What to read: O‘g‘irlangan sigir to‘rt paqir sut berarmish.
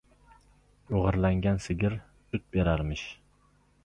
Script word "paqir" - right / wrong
wrong